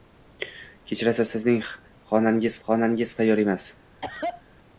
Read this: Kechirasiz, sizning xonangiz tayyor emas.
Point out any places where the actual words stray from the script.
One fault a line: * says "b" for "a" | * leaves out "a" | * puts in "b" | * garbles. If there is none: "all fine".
* puts in "xonangiz"